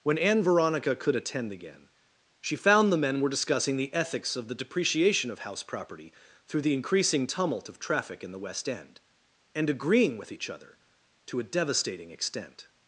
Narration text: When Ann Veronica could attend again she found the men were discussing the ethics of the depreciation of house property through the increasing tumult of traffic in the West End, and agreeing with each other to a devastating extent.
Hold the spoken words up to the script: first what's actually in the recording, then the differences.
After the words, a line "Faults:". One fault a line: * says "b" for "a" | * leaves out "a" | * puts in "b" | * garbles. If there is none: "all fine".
When Ann Veronica could attend again she found the men were discussing the ethics of the depreciation of house property through the increasing tumult of traffic in the West End, and agreeing with each other to a devastating extent.
Faults:
all fine